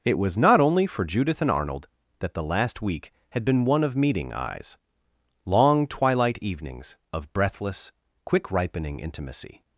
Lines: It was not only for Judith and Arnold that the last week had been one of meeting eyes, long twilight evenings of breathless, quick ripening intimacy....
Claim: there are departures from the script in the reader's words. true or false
false